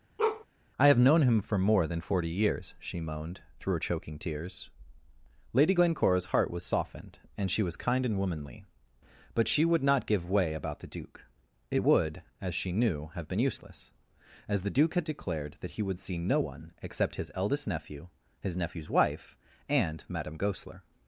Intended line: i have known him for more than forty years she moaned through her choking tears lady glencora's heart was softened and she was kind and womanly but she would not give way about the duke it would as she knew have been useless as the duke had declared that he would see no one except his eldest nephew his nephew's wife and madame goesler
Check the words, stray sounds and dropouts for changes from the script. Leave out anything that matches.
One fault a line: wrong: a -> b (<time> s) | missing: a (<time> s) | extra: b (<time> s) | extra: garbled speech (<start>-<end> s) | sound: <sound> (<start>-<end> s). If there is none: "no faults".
sound: bark (0.2-0.4 s)